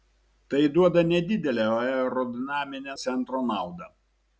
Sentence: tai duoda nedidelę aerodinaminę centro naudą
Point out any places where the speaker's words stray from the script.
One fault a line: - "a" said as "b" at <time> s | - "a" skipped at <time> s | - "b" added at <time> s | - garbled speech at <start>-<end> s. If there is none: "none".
none